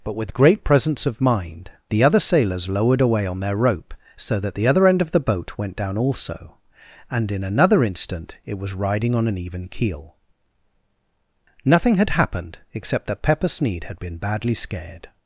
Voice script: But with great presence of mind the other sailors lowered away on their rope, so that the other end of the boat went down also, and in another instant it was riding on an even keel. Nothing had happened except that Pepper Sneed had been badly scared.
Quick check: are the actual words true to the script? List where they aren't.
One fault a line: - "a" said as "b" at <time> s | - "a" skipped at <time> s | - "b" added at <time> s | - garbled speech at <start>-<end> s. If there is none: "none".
none